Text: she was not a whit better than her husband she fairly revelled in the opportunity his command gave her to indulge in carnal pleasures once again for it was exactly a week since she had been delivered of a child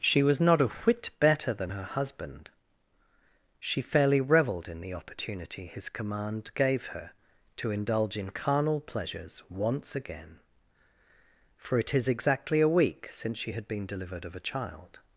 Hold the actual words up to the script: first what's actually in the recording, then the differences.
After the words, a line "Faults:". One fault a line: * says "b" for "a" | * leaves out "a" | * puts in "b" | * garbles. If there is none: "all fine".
she was not a whit better than her husband she fairly revelled in the opportunity his command gave her to indulge in carnal pleasures once again for it is exactly a week since she had been delivered of a child
Faults:
* says "is" for "was"